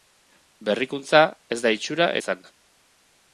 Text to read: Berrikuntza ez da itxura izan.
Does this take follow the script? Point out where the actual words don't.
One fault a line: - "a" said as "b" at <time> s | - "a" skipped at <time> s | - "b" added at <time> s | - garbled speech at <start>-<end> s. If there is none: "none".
none